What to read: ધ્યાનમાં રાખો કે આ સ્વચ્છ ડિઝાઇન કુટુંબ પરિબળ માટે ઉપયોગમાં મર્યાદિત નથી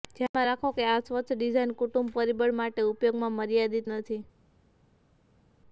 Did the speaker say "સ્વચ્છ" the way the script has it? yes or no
yes